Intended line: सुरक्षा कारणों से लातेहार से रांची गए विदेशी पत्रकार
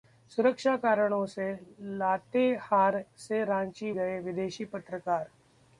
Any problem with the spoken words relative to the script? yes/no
no